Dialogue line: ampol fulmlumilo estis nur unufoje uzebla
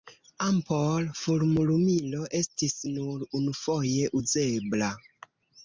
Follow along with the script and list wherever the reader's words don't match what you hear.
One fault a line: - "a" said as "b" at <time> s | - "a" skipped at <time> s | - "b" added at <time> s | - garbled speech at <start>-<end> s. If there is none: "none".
none